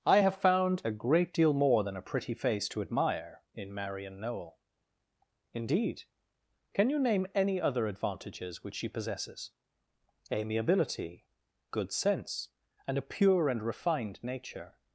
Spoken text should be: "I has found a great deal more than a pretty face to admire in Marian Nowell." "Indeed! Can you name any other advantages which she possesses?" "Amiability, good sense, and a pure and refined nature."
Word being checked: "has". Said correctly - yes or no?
no